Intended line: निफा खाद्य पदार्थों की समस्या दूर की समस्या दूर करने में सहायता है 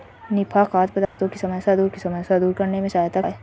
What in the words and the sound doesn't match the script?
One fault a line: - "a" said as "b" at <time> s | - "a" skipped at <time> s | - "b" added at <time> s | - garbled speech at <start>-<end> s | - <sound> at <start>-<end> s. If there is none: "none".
- dropout at 1.1-1.2 s